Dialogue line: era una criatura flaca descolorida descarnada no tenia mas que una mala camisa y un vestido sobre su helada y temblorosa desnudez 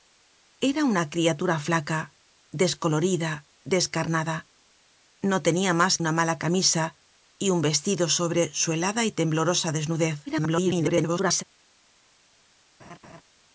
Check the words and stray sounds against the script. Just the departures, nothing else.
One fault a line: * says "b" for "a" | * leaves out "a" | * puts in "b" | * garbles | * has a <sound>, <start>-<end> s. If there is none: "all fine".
* leaves out "que"
* garbles
* has a laugh, 12.8-13.2 s